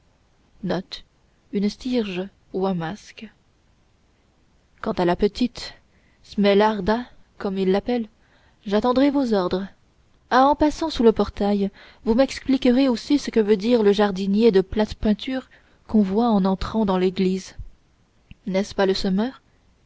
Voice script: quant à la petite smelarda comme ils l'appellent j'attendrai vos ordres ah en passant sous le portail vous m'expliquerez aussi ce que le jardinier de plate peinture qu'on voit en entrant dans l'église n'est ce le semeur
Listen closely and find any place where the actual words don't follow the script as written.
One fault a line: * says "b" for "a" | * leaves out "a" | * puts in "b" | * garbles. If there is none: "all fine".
* puts in "veut dire"
* puts in "pas"